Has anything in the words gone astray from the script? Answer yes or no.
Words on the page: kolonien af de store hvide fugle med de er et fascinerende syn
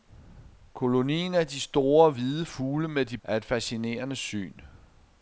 no